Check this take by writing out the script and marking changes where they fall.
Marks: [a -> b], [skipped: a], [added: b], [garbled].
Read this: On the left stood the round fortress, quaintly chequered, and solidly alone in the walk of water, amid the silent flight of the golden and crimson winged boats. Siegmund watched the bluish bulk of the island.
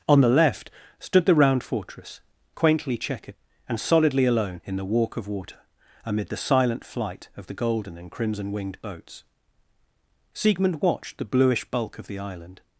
On the left stood the round fortress, quaintly chequered, and solidly alone in the walk of water, amid the silent flight of the golden and crimson winged boats. Siegmund watched the bluish bulk of the island.